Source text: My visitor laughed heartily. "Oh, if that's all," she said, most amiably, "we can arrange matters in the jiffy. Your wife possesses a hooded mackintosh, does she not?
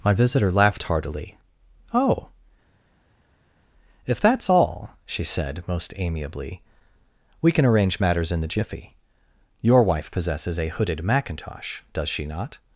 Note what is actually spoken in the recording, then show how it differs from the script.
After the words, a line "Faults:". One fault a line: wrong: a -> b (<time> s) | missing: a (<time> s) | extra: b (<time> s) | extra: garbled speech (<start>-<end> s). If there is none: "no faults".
My visitor laughed heartily. "Oh, if that's all," she said, most amiably, "we can arrange matters in the jiffy. Your wife possesses a hooded mackintosh, does she not?
Faults:
no faults